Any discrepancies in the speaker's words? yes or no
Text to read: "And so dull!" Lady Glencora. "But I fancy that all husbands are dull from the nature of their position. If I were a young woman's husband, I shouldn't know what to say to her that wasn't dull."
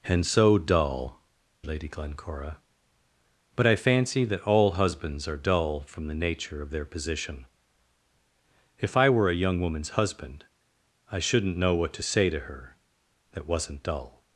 no